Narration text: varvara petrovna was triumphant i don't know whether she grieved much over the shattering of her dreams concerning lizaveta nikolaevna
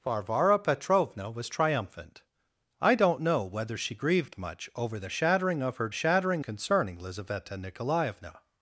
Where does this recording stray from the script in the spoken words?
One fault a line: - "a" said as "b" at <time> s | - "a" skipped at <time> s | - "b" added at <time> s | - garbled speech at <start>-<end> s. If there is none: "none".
- "dreams" said as "shattering" at 5.9 s